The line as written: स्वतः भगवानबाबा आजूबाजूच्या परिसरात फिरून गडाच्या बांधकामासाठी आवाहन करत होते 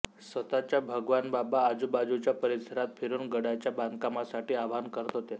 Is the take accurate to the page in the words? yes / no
yes